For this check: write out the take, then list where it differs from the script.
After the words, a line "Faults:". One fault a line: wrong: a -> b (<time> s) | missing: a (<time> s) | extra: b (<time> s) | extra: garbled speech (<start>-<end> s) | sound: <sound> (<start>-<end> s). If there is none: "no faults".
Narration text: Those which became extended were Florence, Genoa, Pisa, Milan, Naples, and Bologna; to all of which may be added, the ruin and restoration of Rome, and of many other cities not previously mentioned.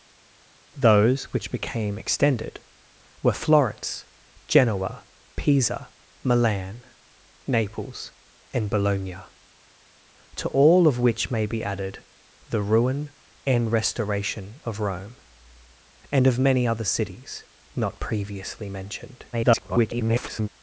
Those which became extended were Florence, Genoa, Pisa, Milan, Naples, and Bologna; to all of which may be added, the ruin and restoration of Rome, and of many other cities not previously mentioned. [garbled]
Faults:
extra: garbled speech (19.3-20.5 s)